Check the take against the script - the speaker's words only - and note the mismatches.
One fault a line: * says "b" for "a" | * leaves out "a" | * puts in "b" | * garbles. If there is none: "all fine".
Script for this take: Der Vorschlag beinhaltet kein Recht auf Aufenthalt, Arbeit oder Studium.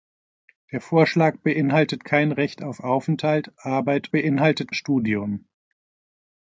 * says "beinhaltet" for "oder"